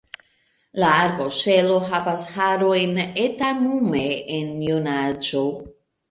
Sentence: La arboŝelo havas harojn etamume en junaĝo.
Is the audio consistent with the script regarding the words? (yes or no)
yes